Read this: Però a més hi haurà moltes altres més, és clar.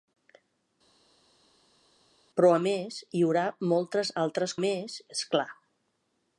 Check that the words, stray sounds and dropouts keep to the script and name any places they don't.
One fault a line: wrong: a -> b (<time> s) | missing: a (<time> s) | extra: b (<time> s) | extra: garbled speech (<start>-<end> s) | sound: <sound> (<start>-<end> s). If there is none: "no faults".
no faults